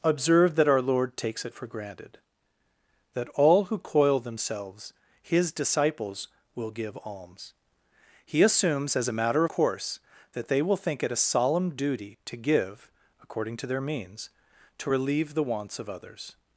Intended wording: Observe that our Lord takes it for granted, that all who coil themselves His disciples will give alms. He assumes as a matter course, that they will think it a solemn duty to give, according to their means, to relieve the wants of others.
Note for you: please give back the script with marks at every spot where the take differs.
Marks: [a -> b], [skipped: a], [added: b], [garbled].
Observe that our Lord takes it for granted, that all who coil themselves His disciples will give alms. He assumes as a matter course, that they will think it a solemn duty to give, according to their means, to relieve the wants of others.